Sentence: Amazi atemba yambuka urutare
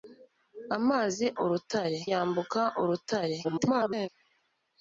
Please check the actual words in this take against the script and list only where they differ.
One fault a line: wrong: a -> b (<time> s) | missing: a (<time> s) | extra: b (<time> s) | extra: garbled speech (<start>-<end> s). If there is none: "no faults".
wrong: atemba -> urutare (1.4 s)
extra: garbled speech (3.4-4.1 s)